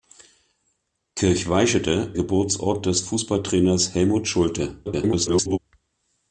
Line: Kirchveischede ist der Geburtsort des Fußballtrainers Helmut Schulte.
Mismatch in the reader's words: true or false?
true